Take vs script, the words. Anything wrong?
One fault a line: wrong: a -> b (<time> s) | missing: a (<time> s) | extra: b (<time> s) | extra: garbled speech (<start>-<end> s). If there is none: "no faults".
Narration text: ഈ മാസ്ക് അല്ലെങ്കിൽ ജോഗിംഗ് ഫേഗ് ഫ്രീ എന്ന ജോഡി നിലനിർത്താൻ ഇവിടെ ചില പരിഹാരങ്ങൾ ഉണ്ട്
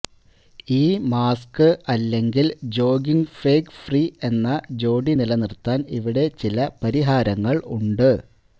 no faults